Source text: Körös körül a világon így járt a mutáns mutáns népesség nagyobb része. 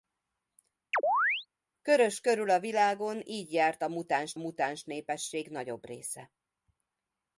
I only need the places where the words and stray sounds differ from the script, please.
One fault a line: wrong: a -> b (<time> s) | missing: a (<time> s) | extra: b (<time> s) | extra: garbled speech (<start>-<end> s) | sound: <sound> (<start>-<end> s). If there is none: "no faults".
sound: chirp (0.9-1.5 s)